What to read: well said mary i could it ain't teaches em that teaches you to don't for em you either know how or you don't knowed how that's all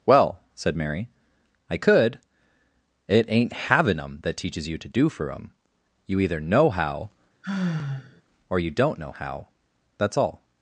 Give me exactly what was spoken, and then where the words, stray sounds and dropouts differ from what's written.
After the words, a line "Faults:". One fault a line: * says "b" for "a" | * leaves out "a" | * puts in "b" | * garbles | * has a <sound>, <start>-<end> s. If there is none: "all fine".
well said mary i could it ain't having em that teaches you to do for em you either know how or you don't know how that's all
Faults:
* says "having" for "teaches"
* says "do" for "don't"
* has a sigh, 7.4-8.2 s
* says "know" for "knowed"